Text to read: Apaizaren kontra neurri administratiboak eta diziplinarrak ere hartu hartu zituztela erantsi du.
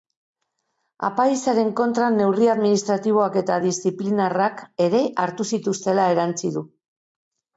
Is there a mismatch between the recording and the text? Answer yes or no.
yes